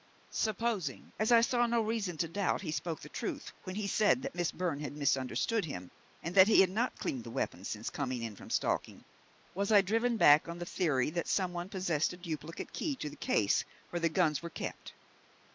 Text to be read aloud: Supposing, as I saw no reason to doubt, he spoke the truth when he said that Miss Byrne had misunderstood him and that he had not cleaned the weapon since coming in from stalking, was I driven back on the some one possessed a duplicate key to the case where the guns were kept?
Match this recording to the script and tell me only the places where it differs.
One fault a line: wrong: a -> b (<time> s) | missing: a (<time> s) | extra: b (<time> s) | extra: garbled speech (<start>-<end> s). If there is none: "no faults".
extra: theory that (10.7 s)